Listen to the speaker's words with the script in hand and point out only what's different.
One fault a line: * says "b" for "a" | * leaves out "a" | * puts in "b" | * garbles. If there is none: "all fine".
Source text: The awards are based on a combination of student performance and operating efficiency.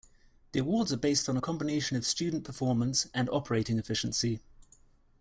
all fine